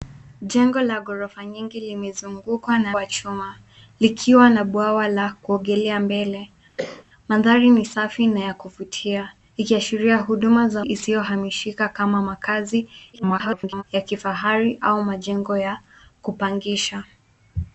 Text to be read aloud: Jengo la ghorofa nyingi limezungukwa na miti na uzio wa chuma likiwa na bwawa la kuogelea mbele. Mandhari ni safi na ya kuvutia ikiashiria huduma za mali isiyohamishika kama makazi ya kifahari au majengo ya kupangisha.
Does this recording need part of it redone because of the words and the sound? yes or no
yes